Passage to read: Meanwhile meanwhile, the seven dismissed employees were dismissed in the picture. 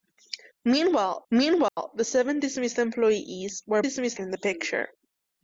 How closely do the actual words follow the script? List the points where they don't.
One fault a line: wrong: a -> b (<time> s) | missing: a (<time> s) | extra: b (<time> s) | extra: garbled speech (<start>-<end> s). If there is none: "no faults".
no faults